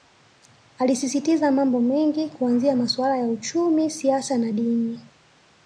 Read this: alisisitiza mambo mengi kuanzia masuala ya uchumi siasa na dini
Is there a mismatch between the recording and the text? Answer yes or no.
no